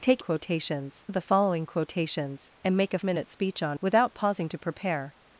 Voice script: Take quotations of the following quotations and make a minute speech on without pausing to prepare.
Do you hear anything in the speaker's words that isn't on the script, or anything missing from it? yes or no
no